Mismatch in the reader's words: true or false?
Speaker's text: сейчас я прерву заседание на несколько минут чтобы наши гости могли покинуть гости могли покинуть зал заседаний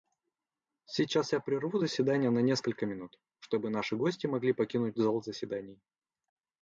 true